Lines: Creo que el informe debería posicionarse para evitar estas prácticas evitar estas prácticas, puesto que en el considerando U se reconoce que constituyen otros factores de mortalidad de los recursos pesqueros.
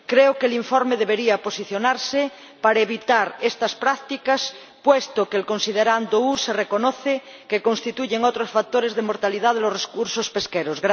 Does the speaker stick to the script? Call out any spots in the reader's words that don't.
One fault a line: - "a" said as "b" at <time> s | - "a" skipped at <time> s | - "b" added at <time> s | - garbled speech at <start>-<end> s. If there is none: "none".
- "evitar estas prácticas" skipped at 4.5 s